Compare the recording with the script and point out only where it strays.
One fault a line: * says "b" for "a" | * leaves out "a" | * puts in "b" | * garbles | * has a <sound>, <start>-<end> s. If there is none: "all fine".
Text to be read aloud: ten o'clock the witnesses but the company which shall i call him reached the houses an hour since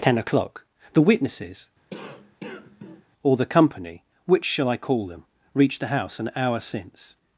* has a cough, 1.9-3.0 s
* says "or" for "but"
* says "them" for "him"
* says "house" for "houses"